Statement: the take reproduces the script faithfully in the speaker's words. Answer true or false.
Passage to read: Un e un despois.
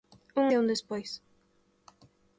true